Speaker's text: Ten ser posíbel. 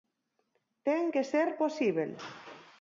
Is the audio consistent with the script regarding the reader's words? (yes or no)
no